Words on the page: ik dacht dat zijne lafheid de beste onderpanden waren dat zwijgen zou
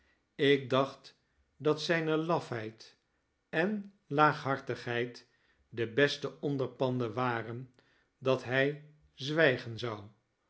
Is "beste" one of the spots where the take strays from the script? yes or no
no